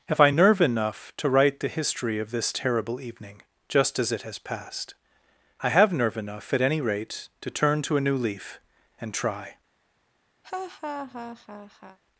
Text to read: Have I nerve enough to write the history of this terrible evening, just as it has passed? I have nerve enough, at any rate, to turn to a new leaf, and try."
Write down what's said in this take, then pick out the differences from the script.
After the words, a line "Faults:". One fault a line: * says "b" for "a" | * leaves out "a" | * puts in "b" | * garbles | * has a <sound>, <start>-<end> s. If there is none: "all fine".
Have I nerve enough to write the history of this terrible evening, just as it has passed? I have nerve enough, at any rate, to turn to a new leaf, and try."
Faults:
* has a laugh, 10.4-12.0 s